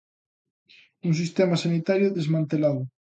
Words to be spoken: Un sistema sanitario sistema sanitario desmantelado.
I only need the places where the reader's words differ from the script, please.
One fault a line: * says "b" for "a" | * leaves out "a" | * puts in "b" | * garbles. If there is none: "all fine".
* leaves out "sistema sanitario"